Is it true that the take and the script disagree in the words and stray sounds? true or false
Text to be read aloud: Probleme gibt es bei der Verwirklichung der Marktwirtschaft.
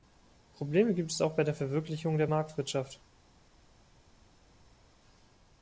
true